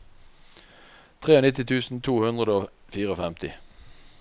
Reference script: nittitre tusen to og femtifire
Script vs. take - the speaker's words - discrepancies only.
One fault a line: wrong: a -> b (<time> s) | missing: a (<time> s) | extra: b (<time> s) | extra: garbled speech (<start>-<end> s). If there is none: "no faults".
extra: hundre (2.2 s)